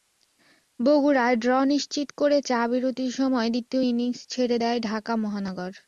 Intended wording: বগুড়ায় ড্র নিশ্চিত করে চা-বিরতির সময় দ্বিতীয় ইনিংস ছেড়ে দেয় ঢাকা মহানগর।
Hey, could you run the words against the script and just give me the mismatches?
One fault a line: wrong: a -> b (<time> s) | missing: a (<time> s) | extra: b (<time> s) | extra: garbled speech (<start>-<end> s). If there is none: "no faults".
no faults